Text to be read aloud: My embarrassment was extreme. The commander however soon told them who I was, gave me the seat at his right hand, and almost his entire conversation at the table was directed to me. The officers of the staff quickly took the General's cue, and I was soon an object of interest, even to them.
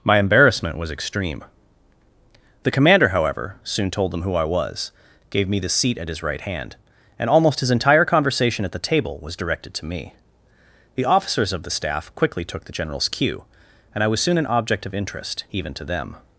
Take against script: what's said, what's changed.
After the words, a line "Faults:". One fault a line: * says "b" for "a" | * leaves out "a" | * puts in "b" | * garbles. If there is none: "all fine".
My embarrassment was extreme. The commander however soon told them who I was, gave me the seat at his right hand, and almost his entire conversation at the table was directed to me. The officers of the staff quickly took the General's cue, and I was soon an object of interest, even to them.
Faults:
all fine